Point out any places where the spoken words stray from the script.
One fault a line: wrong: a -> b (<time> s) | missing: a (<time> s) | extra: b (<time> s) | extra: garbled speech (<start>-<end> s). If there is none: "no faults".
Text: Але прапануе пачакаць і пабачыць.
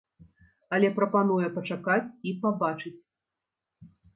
no faults